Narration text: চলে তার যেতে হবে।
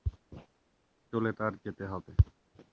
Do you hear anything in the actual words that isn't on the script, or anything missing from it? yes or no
no